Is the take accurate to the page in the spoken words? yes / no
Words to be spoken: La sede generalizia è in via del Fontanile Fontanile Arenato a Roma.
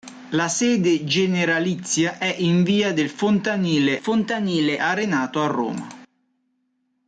yes